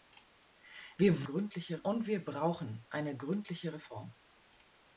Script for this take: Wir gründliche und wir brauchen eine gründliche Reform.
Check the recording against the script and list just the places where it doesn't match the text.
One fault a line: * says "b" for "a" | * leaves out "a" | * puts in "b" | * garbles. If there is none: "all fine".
all fine